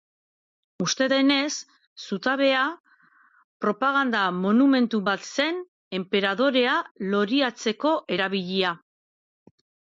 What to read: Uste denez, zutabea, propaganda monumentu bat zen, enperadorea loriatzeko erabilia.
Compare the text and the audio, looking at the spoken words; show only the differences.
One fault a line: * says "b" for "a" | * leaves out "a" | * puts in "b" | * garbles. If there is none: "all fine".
all fine